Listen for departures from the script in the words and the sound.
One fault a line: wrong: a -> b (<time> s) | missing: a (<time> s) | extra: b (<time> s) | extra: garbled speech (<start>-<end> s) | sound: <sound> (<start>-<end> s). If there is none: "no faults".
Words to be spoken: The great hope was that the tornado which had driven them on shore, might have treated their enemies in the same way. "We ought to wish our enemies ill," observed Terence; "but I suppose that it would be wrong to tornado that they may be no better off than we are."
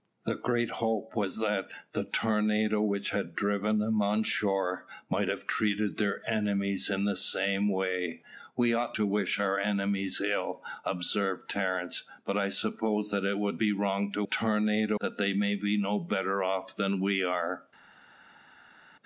no faults